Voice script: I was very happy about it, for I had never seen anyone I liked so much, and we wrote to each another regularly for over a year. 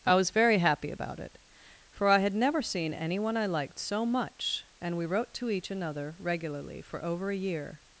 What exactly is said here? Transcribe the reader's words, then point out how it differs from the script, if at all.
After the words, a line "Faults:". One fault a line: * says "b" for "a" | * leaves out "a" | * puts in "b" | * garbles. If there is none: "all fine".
I was very happy about it, for I had never seen anyone I liked so much, and we wrote to each another regularly for over a year.
Faults:
all fine